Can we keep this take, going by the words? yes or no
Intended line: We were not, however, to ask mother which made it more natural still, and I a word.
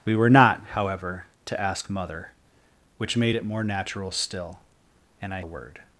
yes